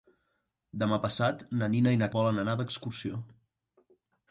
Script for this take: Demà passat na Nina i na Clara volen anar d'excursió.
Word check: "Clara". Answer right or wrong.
wrong